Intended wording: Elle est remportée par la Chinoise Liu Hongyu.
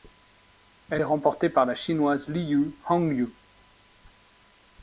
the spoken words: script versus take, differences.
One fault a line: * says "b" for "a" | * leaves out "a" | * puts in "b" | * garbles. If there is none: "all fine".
all fine